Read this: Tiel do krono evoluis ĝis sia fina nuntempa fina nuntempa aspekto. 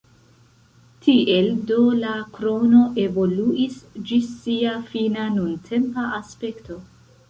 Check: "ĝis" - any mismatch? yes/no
no